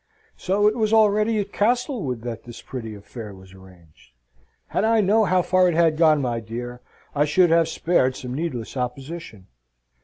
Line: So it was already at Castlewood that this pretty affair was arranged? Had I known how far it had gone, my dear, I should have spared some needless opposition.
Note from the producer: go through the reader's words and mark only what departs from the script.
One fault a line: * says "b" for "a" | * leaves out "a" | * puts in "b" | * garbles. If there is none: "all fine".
all fine